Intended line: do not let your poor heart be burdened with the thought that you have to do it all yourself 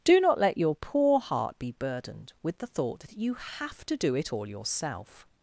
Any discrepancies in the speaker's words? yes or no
no